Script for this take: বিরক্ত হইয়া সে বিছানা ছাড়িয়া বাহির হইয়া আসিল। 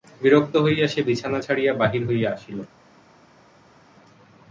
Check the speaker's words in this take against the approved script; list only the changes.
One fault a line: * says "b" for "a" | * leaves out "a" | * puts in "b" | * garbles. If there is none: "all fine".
all fine